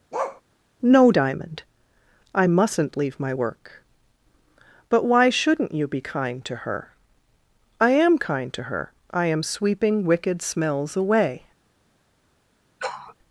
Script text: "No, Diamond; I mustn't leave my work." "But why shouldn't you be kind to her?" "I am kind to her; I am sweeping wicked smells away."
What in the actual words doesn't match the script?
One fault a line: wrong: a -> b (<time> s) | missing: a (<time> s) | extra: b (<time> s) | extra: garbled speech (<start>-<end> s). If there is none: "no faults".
no faults